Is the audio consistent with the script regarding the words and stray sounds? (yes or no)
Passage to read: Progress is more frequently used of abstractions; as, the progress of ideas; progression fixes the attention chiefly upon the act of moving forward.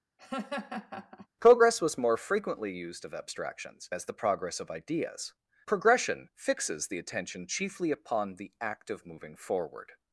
no